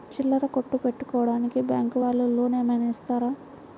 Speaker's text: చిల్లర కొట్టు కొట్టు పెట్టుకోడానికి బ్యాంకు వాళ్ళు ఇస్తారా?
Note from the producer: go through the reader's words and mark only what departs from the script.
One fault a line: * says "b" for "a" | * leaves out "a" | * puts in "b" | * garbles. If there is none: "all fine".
* leaves out "కొట్టు"
* puts in "లోన్ ఏమైనా"